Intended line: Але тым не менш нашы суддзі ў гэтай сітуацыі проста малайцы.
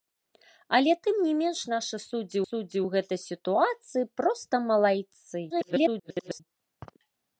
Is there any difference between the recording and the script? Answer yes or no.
yes